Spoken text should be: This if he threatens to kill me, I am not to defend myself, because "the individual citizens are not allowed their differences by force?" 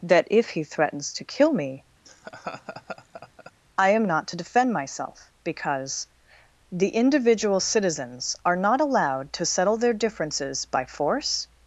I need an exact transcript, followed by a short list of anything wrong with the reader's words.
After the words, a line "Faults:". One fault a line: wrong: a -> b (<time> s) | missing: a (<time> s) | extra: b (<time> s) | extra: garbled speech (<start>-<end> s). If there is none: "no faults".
That if he threatens to kill me, I am not to defend myself, because "the individual citizens are not allowed to settle their differences by force?"
Faults:
wrong: This -> That (0.0 s)
extra: to settle (9.3 s)